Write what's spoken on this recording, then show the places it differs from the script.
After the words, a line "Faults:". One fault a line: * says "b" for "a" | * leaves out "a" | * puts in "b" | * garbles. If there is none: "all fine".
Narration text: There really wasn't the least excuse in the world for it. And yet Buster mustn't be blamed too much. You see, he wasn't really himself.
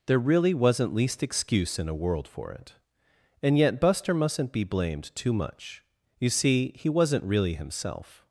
There really wasn't least excuse in a world for it. And yet Buster mustn't be blamed too much. You see, he wasn't really himself.
Faults:
* leaves out "the"
* says "a" for "the"